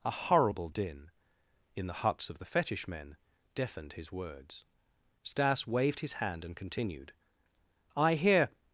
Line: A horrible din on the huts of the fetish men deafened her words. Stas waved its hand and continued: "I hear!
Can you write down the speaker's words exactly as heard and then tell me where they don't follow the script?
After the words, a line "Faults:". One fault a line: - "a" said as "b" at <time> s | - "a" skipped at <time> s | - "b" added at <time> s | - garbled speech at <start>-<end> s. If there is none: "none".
A horrible din in the huts of the fetish men deafened his words. Stas waved his hand and continued: "I hear!
Faults:
- "on" said as "in" at 1.8 s
- "her" said as "his" at 3.9 s
- "its" said as "his" at 6.0 s